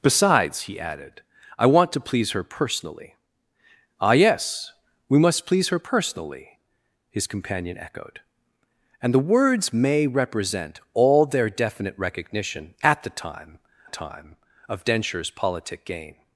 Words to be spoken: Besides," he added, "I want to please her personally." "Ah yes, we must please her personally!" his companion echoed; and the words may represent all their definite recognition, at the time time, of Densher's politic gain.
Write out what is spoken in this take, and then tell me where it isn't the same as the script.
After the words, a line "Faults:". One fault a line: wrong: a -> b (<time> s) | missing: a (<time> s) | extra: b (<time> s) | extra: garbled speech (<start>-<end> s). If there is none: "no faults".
Besides," he added, "I want to please her personally." "Ah yes, we must please her personally!" his companion echoed; and the words may represent all their definite recognition, at the time time, of Densher's politic gain.
Faults:
no faults